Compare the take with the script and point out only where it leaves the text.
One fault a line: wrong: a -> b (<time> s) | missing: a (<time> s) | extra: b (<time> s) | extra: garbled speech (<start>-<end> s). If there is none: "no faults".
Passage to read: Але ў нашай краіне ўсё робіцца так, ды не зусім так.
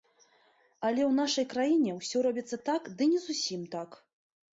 no faults